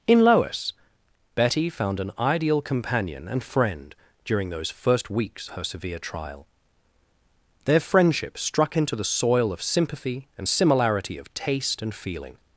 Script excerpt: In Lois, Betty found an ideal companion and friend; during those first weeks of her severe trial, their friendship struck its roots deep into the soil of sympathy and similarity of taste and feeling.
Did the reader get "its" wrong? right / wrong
wrong